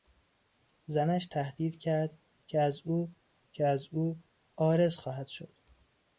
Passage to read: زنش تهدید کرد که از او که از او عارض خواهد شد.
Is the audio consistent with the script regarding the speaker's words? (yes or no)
yes